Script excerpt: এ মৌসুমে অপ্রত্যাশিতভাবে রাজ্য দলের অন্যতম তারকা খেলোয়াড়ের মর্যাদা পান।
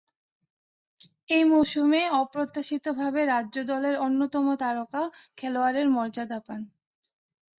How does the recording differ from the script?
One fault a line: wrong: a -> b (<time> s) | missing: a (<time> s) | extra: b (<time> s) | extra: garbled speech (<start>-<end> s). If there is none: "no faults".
no faults